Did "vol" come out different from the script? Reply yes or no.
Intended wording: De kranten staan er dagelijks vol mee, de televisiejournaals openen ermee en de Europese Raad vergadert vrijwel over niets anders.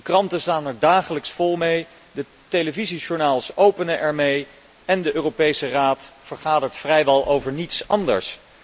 no